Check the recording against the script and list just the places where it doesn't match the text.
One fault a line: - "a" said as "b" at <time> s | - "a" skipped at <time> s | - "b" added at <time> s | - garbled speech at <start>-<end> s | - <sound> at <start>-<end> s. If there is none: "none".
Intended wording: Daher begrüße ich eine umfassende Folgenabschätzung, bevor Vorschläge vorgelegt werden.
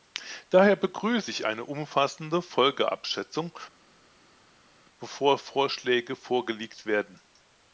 none